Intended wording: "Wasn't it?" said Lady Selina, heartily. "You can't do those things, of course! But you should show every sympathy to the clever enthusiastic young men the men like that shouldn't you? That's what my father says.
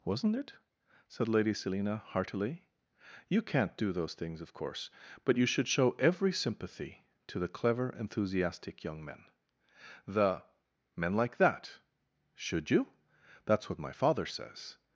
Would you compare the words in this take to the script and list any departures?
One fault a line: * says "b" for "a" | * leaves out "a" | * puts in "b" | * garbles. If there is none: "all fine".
* says "should" for "shouldn't"